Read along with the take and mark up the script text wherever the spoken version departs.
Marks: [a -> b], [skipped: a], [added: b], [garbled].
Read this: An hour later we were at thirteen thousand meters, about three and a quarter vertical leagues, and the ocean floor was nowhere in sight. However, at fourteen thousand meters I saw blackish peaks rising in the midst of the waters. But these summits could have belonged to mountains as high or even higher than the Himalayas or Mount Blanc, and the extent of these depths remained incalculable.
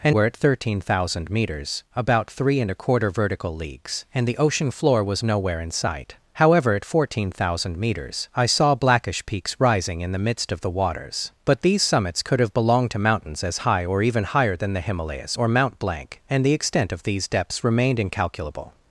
An [skipped: hour later we] were at thirteen thousand meters, about three and a quarter vertical leagues, and the ocean floor was nowhere in sight. However, at fourteen thousand meters I saw blackish peaks rising in the midst of the waters. But these summits could have belonged to mountains as high or even higher than the Himalayas or Mount Blanc, and the extent of these depths remained incalculable.